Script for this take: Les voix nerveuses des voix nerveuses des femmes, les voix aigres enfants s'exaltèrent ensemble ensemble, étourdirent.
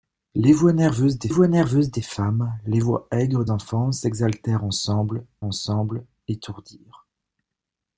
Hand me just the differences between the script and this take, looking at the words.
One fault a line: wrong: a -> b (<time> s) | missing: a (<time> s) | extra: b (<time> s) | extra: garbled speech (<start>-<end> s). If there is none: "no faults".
no faults